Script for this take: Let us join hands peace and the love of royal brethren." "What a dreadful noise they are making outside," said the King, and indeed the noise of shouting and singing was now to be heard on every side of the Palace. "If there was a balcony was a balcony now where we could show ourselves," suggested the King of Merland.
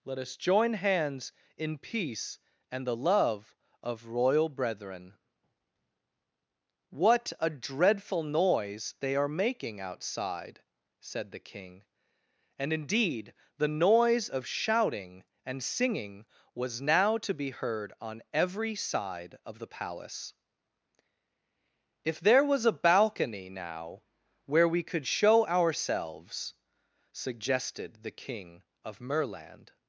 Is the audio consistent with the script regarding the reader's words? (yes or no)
no